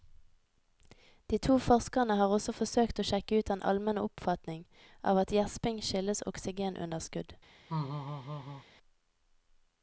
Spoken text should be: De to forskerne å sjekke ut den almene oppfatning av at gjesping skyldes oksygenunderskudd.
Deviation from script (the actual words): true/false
true